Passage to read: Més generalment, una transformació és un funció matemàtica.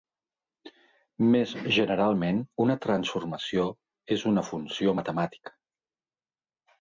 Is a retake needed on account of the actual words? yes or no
yes